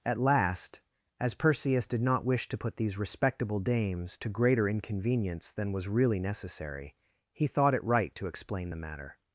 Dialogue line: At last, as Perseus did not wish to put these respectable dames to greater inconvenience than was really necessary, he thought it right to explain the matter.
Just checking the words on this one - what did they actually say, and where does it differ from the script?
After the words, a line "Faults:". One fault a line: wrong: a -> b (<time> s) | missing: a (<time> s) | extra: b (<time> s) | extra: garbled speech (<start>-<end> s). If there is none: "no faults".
At last, as Perseus did not wish to put these respectable dames to greater inconvenience than was really necessary, he thought it right to explain the matter.
Faults:
no faults